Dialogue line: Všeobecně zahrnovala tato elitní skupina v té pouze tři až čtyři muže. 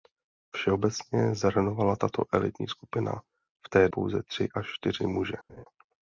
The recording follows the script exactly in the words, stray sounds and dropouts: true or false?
false